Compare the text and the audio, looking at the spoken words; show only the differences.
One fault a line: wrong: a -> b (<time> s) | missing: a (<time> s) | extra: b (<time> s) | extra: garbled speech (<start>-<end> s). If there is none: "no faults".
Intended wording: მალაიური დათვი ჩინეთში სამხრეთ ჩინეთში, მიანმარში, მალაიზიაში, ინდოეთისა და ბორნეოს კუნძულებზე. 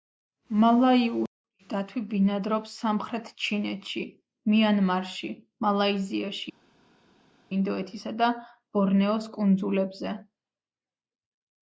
wrong: ჩინეთში -> ბინადრობს (2.1 s)